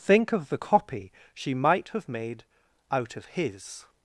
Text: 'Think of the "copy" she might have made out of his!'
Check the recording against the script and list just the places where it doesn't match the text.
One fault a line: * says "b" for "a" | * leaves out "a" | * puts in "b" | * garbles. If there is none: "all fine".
all fine